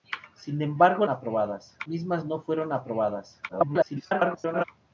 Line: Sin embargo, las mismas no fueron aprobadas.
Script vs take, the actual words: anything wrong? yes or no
yes